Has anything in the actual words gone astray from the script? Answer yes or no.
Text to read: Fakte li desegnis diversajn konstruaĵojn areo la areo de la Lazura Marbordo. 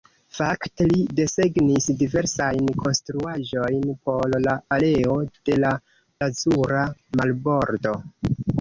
yes